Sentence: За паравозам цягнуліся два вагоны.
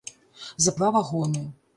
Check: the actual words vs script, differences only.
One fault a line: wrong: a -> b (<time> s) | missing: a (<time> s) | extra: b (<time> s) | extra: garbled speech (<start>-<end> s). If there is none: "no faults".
missing: паравозам цягнуліся (0.7 s)